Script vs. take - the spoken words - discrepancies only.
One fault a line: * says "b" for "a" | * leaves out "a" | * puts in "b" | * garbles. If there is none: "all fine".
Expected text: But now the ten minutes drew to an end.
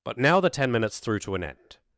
* says "threw" for "drew"